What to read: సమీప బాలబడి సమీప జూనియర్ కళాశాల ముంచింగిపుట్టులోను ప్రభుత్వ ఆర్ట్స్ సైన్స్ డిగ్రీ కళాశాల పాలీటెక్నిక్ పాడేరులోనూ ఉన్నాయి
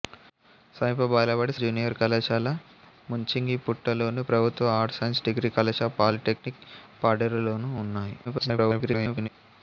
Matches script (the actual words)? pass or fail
fail